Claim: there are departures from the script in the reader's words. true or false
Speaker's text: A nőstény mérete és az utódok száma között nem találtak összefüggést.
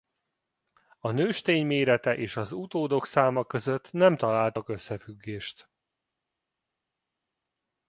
false